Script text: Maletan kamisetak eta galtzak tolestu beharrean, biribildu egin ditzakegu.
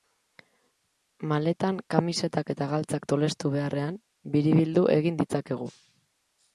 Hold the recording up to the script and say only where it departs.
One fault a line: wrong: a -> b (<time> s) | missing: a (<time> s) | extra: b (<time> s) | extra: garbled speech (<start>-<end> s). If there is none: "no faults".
no faults